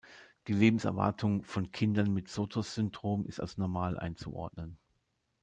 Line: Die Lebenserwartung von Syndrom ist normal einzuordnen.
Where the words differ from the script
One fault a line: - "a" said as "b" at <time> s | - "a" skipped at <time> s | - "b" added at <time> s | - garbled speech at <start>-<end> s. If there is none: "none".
- "Kindern mit Sotos" added at 1.7 s
- "als" added at 3.4 s